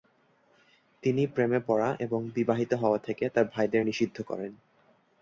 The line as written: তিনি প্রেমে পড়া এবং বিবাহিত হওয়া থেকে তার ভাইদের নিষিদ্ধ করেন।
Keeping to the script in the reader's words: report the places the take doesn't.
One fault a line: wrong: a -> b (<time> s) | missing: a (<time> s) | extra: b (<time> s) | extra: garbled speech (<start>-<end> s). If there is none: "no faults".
no faults